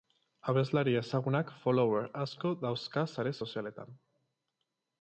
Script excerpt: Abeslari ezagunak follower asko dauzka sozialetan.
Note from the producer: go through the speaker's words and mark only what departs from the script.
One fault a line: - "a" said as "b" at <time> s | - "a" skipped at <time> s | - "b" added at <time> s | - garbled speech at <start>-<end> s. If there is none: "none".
- "sare" added at 3.2 s